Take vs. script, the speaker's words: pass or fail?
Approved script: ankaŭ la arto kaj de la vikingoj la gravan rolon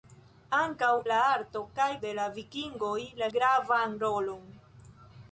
pass